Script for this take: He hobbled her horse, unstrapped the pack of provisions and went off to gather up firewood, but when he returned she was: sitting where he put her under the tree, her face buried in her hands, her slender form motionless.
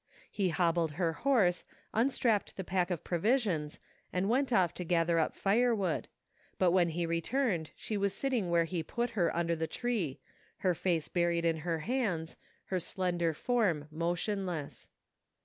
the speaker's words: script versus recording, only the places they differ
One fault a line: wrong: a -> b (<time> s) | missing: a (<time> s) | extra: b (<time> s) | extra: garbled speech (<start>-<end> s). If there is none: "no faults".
no faults